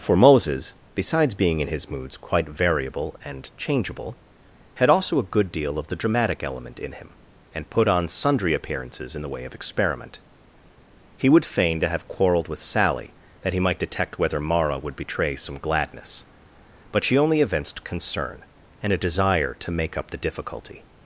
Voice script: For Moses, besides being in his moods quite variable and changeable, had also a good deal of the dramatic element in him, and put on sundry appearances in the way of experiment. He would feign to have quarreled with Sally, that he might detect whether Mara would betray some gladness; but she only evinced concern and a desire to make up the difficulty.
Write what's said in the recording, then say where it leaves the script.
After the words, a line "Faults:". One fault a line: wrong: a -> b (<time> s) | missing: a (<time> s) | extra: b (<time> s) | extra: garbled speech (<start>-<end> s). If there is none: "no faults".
For Moses, besides being in his moods quite variable and changeable, had also a good deal of the dramatic element in him, and put on sundry appearances in the way of experiment. He would feign to have quarreled with Sally, that he might detect whether Mara would betray some gladness; but she only evinced concern and a desire to make up the difficulty.
Faults:
no faults